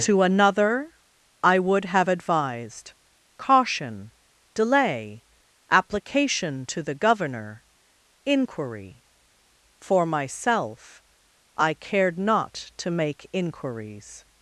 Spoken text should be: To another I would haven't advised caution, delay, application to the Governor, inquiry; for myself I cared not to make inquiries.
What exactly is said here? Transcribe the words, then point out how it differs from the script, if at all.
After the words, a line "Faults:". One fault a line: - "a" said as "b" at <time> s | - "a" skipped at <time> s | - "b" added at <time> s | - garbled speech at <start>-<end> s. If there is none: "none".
To another I would have advised caution, delay, application to the Governor, inquiry; for myself I cared not to make inquiries.
Faults:
- "haven't" said as "have" at 1.9 s